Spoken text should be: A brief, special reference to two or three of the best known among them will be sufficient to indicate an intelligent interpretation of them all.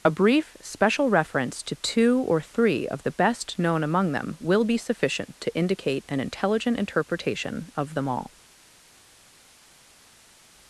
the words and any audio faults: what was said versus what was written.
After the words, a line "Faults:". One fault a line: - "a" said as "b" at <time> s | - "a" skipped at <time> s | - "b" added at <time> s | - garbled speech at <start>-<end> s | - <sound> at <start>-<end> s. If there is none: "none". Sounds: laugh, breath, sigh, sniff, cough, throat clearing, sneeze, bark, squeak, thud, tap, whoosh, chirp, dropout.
A brief, special reference to two or three of the best known among them will be sufficient to indicate an intelligent interpretation of them all.
Faults:
none